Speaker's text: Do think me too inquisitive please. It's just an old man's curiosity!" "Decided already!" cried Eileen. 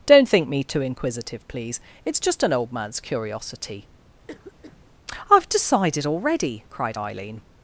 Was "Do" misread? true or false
true